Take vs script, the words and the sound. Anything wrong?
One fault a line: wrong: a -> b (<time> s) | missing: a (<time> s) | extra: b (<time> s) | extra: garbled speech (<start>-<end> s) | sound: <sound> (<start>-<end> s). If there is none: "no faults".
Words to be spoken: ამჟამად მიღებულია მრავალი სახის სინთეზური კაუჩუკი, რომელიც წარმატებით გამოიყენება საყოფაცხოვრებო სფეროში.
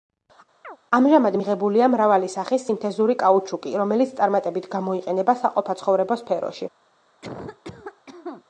sound: chirp (0.6-0.8 s)
sound: cough (7.2-8.4 s)